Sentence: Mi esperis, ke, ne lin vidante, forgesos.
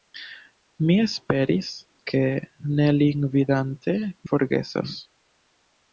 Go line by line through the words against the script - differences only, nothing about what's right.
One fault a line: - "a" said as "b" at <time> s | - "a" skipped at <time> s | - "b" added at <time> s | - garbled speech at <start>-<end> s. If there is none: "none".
none